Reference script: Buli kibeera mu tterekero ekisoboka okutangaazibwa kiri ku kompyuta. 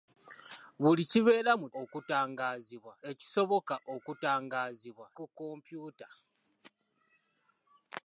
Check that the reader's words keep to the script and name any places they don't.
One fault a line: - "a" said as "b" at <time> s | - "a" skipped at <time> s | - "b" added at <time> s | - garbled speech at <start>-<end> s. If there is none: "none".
- "tterekero" said as "okutangaazibwa" at 1.8 s
- "kiri" skipped at 5.1 s